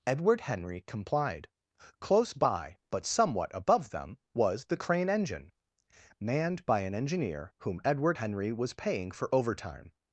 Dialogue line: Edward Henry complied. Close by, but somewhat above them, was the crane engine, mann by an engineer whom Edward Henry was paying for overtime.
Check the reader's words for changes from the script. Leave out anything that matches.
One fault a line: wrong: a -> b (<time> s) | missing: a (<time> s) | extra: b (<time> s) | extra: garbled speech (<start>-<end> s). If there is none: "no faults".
wrong: mann -> manned (6.2 s)